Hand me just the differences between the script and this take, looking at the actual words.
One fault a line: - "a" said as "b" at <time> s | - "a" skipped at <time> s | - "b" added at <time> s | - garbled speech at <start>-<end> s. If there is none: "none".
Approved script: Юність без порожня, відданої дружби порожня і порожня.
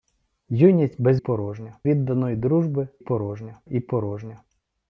none